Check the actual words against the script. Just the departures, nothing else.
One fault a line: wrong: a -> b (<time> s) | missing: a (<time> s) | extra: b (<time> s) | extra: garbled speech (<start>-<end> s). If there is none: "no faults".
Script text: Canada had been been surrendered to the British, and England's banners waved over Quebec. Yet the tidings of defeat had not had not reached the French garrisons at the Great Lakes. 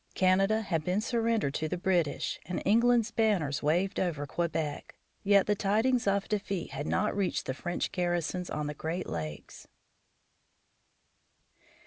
missing: been (1.0 s)
missing: had not (7.2 s)
wrong: at -> on (8.5 s)